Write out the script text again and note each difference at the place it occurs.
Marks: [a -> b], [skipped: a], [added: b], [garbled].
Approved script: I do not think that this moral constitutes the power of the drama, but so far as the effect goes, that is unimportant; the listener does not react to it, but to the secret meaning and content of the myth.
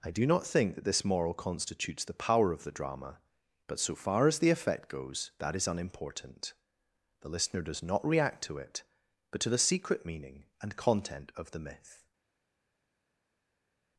I do not think that this moral constitutes the power of the drama, but so far as the effect goes, that is unimportant; the listener does not react to it, but to the secret meaning and content of the myth.